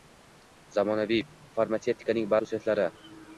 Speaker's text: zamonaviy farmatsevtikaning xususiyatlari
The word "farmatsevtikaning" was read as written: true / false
true